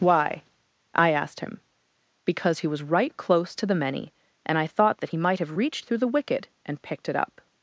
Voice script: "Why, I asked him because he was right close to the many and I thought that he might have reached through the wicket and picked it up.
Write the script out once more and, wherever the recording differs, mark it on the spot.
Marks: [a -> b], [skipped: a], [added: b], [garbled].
"Why, I asked him because he was right close to the many and I thought that he might have reached through the wicket and picked it up.